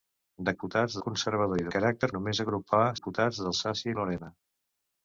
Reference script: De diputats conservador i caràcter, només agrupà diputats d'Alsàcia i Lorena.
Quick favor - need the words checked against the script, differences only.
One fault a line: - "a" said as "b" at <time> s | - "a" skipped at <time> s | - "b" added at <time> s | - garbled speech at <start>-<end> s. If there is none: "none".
none